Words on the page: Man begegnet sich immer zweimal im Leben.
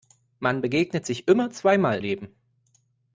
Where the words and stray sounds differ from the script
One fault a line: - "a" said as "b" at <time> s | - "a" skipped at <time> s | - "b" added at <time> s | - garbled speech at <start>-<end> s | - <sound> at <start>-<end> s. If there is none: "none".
- "im" skipped at 2.0 s